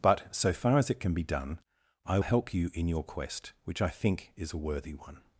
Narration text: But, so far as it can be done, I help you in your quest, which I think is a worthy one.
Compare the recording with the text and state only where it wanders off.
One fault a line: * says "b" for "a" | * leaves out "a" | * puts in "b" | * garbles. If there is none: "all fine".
all fine